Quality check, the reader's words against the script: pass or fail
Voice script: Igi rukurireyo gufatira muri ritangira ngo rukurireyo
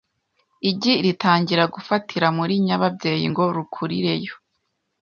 fail